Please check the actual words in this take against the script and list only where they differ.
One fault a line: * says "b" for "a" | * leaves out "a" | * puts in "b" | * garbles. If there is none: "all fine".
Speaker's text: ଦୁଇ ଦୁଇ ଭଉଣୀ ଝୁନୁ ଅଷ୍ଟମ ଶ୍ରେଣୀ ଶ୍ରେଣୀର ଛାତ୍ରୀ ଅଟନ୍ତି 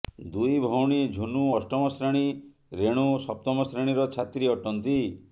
* leaves out "ଦୁଇ"
* puts in "ରେଣୁ ସପ୍ତମ"